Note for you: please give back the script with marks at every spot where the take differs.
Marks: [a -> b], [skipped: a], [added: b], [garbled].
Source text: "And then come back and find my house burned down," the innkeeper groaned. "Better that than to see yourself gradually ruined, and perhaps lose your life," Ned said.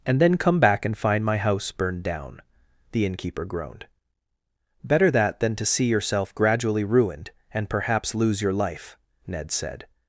"And then come back and find my house burned down," the innkeeper groaned. "Better that than to see yourself gradually ruined, and perhaps lose your life," Ned said.